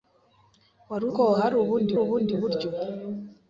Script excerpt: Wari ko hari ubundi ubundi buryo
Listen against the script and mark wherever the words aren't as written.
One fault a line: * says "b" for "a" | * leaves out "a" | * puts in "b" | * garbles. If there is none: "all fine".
all fine